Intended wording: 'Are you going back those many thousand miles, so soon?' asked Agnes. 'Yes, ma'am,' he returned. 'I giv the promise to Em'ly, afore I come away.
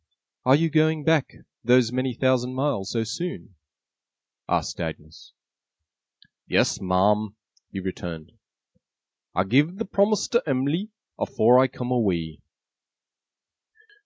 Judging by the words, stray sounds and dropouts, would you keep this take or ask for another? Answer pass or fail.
pass